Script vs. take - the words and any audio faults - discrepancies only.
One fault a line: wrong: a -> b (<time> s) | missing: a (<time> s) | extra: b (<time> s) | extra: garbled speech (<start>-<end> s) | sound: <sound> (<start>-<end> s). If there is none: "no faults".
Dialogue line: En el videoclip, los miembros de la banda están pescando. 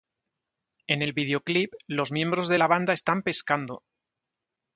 no faults